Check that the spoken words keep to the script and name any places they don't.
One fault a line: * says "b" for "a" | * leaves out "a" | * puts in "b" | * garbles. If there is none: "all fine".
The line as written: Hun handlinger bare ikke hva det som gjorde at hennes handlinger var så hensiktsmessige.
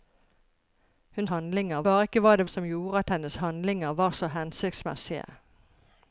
all fine